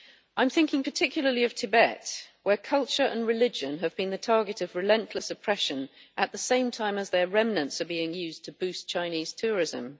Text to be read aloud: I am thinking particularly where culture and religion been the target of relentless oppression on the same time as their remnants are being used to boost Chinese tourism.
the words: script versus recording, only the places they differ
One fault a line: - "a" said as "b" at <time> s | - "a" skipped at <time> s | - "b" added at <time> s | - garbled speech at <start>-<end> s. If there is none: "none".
- "of Tibet" added at 1.4 s
- "have" added at 3.8 s
- "on" said as "at" at 6.2 s